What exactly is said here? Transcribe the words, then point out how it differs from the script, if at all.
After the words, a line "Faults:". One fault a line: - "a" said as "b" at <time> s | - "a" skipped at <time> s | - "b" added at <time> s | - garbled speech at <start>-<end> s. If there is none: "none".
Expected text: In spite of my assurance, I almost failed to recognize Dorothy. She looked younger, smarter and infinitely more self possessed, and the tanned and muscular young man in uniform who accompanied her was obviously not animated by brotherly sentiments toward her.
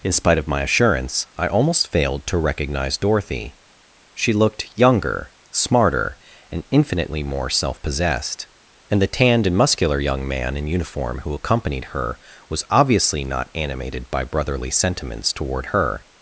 In spite of my assurance, I almost failed to recognize Dorothy. She looked younger, smarter and infinitely more self possessed, and the tanned and muscular young man in uniform who accompanied her was obviously not animated by brotherly sentiments toward her.
Faults:
none